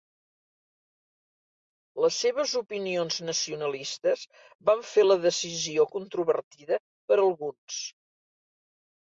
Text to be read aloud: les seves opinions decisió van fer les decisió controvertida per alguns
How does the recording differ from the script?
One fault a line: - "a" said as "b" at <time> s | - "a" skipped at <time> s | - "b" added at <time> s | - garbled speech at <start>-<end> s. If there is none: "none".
- "decisió" said as "nacionalistes" at 3.3 s
- "les" said as "la" at 5.1 s